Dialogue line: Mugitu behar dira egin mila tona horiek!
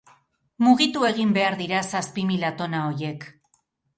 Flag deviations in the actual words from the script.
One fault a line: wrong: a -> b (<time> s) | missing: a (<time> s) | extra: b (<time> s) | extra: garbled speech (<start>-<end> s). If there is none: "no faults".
extra: egin (1.1 s)
wrong: egin -> zazpi (2.0 s)